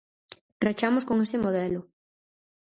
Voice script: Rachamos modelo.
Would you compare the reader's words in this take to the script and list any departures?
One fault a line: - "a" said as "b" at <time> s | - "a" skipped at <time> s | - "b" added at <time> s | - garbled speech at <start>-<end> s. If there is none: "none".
- "con ese" added at 1.0 s